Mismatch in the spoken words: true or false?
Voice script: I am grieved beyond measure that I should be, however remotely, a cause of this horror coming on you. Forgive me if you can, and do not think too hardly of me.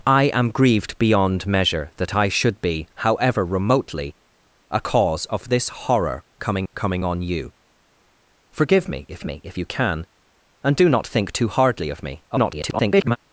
true